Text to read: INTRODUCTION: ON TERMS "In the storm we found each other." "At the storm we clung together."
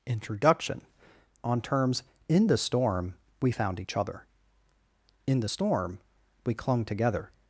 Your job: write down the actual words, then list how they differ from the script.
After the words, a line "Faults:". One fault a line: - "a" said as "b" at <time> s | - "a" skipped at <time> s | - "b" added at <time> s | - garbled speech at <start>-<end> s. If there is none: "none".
INTRODUCTION: ON TERMS "In the storm we found each other." "In the storm we clung together."
Faults:
- "At" said as "In" at 5.3 s